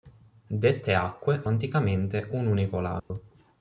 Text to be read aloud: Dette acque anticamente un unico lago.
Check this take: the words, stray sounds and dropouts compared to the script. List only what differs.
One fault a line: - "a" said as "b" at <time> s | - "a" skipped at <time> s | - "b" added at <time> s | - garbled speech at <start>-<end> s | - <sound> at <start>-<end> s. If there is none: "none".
- dropout at 3.0-3.1 s